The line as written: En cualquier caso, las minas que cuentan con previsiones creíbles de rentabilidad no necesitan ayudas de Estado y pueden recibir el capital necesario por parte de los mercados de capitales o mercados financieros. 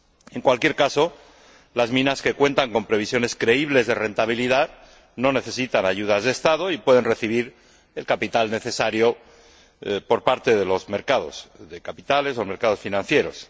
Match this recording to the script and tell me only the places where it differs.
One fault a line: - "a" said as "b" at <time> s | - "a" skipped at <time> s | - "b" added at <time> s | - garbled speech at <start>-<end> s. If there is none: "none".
none